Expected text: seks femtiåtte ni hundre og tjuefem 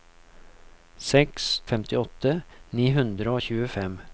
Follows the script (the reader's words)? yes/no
yes